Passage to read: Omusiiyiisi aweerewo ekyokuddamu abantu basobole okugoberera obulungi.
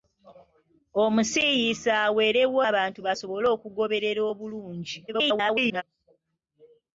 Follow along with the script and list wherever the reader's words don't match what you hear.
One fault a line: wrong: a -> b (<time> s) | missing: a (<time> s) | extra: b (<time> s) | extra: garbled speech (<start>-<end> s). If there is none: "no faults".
missing: ekyokuddamu (2.6 s)
extra: garbled speech (5.1-5.8 s)